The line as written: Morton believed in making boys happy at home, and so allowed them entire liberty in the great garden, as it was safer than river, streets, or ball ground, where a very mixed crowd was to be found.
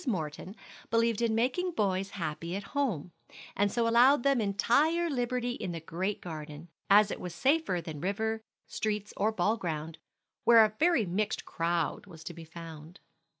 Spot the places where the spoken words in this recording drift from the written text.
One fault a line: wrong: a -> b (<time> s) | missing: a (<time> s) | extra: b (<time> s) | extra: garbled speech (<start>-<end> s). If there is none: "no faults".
no faults